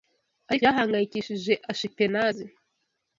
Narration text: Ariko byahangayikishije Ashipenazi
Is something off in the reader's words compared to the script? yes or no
no